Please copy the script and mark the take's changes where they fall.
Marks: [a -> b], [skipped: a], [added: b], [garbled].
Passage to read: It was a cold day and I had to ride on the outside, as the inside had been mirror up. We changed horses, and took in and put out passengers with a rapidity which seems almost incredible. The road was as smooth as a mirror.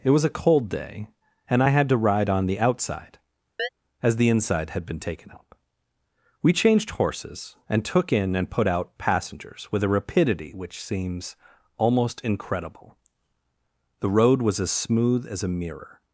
It was a cold day and I had to ride on the outside, as the inside had been [mirror -> taken] up. We changed horses, and took in and put out passengers with a rapidity which seems almost incredible. The road was as smooth as a mirror.